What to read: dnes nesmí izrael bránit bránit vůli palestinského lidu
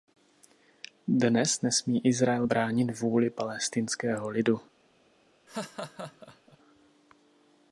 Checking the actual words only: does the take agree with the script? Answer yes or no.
no